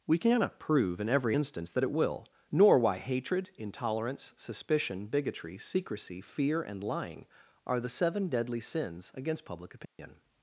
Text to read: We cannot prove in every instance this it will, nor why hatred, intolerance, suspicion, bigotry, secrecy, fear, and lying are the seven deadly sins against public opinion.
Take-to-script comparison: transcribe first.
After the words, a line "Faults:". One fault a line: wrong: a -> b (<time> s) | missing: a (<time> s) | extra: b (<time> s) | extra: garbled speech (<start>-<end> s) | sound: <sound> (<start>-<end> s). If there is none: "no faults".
We cannot prove in every instance that it will, nor why hatred, intolerance, suspicion, bigotry, secrecy, fear, and lying are the seven deadly sins against public opinion.
Faults:
wrong: this -> that (1.7 s)
sound: dropout (9.8-10.0 s)